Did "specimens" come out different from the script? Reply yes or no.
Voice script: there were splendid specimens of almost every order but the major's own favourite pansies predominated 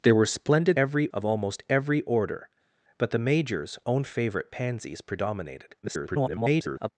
yes